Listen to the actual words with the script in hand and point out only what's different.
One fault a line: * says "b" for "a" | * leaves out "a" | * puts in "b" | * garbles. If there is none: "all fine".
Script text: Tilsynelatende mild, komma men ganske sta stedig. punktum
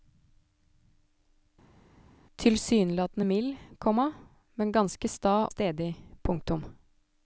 all fine